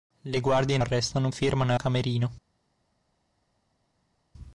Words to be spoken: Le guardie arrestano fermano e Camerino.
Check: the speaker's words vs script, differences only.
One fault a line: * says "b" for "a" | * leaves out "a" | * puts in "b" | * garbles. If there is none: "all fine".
all fine